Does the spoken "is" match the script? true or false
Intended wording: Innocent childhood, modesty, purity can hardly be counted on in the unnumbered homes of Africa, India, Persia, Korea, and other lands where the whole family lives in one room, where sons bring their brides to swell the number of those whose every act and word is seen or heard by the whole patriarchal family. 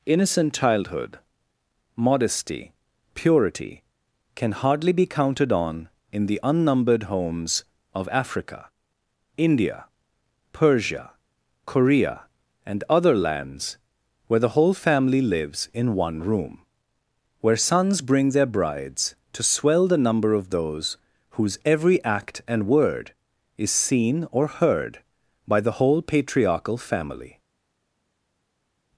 true